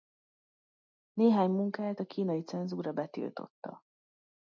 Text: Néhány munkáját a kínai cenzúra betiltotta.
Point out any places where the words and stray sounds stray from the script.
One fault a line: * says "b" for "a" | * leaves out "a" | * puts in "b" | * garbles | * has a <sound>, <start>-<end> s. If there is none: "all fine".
all fine